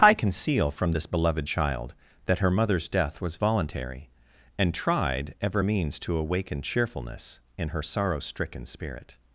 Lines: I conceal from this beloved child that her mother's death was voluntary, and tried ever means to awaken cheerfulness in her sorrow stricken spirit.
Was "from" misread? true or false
false